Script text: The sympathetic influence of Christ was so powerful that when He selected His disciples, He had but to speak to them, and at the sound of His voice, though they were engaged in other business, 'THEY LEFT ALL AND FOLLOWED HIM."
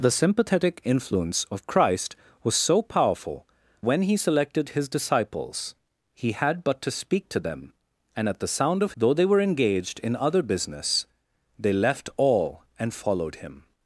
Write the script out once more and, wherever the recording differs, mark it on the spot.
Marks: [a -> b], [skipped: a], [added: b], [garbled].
The sympathetic influence of Christ was so powerful [skipped: that] when He selected His disciples, He had but to speak to them, and at the sound of [skipped: His voice,] though they were engaged in other business, 'THEY LEFT ALL AND FOLLOWED HIM."